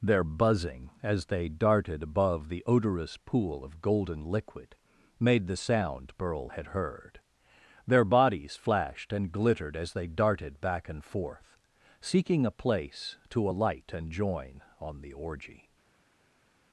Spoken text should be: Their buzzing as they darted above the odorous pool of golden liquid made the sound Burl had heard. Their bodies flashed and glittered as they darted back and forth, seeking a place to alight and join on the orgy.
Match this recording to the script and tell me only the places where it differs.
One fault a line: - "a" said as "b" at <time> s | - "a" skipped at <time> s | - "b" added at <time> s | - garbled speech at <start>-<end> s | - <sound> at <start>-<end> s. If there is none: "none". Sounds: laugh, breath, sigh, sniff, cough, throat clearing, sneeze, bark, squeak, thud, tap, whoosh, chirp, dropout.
none